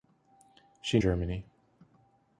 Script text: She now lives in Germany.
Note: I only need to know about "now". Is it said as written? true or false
false